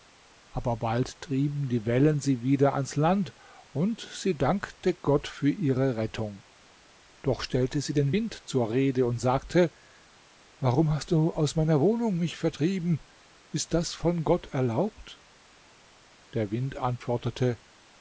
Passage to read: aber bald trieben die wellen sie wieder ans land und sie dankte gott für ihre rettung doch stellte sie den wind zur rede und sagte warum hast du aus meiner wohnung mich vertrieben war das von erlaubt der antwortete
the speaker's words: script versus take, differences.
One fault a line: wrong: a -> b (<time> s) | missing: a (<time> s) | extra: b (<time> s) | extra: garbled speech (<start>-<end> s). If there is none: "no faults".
wrong: war -> ist (13.5 s)
extra: gott (14.2 s)
extra: wind (16.5 s)